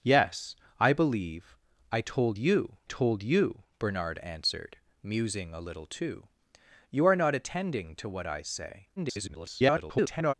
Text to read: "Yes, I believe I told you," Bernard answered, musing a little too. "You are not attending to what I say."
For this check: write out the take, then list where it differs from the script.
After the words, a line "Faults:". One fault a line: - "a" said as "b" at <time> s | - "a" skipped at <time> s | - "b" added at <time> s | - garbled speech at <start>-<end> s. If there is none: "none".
"Yes, I believe I told you told you," Bernard answered, musing a little too. "You are not attending to what I say." [garbled]
Faults:
- "told you" added at 2.8 s
- garbled speech at 9.0-10.3 s